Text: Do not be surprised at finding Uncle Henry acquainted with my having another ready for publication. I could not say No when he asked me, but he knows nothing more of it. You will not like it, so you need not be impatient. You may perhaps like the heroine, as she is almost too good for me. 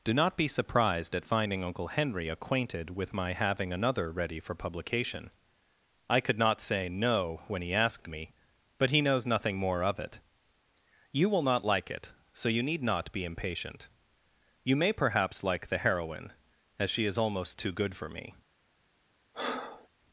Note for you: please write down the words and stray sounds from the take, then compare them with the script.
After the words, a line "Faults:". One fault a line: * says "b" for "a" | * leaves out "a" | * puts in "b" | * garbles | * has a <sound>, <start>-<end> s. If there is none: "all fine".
Do not be surprised at finding Uncle Henry acquainted with my having another ready for publication. I could not say No when he asked me, but he knows nothing more of it. You will not like it, so you need not be impatient. You may perhaps like the heroine, as she is almost too good for me.
Faults:
* has a breath, 19.3-19.9 s